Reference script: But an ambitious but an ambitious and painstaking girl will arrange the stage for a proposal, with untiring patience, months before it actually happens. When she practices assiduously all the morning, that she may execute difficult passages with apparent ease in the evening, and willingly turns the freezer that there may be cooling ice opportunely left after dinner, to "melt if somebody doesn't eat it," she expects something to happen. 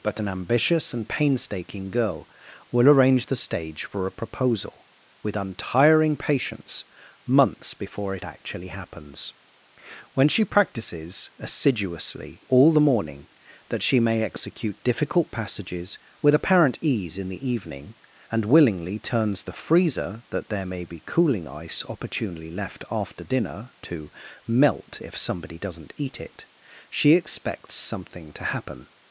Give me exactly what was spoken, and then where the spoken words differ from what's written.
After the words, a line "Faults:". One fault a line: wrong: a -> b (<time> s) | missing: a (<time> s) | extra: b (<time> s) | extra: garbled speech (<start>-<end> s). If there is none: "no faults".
But an ambitious and painstaking girl will arrange the stage for a proposal, with untiring patience, months before it actually happens. When she practices assiduously all the morning, that she may execute difficult passages with apparent ease in the evening, and willingly turns the freezer that there may be cooling ice opportunely left after dinner, to "melt if somebody doesn't eat it," she expects something to happen.
Faults:
missing: but an ambitious (0.9 s)